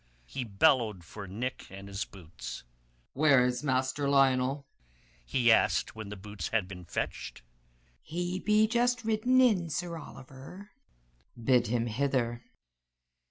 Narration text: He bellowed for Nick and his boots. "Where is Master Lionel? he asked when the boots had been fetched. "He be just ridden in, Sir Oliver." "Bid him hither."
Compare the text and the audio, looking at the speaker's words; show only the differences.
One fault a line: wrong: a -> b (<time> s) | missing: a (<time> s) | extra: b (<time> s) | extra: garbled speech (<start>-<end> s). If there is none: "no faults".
no faults